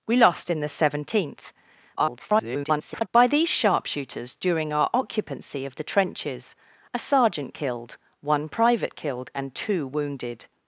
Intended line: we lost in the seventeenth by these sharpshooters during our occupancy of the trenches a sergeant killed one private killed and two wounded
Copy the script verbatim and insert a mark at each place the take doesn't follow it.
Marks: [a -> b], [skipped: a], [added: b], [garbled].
we lost in the seventeenth [garbled] by these sharpshooters during our occupancy of the trenches a sergeant killed one private killed and two wounded